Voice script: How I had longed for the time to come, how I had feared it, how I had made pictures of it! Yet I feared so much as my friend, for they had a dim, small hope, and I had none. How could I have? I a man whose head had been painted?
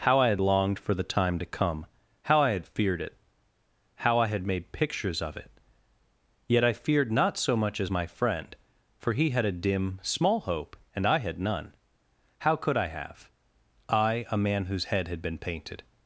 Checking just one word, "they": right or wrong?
wrong